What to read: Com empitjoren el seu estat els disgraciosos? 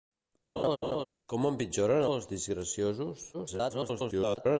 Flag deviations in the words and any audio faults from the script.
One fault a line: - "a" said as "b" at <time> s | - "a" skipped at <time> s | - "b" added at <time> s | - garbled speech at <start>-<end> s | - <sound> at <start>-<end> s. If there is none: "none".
- laugh at 0.6-1.0 s
- "el seu estat" skipped at 2.1 s
- garbled speech at 3.3-4.6 s